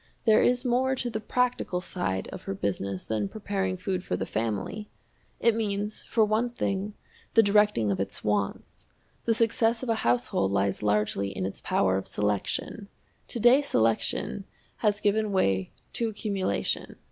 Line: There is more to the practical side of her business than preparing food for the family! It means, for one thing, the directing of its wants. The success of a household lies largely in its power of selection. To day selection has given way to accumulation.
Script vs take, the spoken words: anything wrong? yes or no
no